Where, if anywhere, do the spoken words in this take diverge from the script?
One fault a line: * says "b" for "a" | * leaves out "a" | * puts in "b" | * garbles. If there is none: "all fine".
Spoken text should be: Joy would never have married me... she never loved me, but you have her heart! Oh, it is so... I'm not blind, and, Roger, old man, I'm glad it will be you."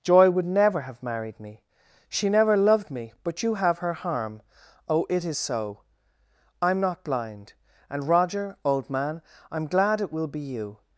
* says "harm" for "heart"